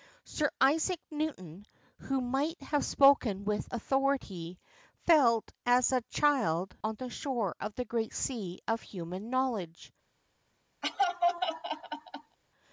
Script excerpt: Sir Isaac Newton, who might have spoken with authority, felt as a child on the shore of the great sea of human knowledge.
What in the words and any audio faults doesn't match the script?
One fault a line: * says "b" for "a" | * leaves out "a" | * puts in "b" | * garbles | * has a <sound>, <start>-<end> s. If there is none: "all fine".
* has a laugh, 10.8-12.4 s